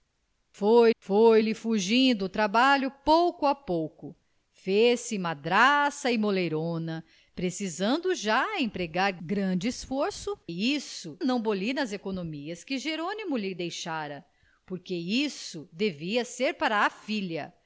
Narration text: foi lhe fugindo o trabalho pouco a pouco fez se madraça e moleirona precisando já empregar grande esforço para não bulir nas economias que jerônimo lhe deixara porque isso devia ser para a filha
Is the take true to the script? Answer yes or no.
no